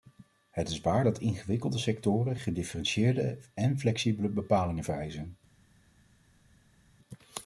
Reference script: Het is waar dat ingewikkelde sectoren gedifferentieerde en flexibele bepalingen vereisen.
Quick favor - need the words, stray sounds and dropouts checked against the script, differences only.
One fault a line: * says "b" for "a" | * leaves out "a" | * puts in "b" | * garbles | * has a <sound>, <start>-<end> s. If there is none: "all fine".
all fine